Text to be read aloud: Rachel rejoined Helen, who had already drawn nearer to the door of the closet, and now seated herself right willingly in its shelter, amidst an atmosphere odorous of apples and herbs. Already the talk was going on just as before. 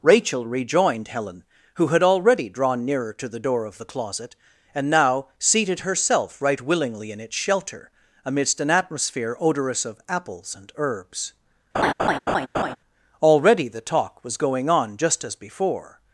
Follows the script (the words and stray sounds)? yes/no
no